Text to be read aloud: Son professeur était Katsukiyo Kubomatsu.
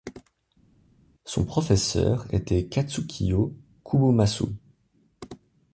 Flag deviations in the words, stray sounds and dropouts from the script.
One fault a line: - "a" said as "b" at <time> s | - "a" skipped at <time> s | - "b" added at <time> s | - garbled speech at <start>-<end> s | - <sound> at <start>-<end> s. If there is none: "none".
none